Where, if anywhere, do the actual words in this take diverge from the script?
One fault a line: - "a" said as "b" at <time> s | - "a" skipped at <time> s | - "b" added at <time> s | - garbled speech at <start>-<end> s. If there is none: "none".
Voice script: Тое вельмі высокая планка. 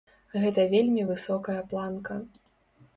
- "Тое" said as "Гэта" at 0.5 s